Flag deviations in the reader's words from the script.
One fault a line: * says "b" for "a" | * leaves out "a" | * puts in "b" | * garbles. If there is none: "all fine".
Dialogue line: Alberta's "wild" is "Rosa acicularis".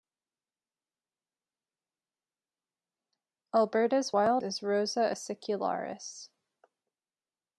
all fine